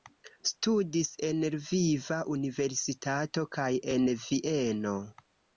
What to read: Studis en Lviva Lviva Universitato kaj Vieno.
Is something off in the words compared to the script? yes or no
yes